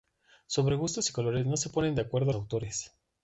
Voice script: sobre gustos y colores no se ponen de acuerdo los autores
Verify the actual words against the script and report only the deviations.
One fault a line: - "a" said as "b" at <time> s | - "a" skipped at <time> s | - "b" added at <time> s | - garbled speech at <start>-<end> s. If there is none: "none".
- "los" skipped at 2.3 s